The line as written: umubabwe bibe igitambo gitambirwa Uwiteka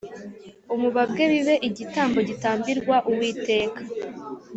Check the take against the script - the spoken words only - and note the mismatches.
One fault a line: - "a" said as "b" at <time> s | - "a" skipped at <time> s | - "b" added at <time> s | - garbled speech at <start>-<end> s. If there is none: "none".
none